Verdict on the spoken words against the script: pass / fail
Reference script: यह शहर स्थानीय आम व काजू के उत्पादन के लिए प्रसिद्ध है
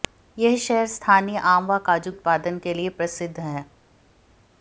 fail